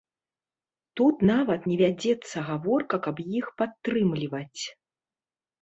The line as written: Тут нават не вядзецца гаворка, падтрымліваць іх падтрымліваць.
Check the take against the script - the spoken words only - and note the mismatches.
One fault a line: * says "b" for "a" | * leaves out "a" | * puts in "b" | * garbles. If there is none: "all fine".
* says "каб" for "падтрымліваць"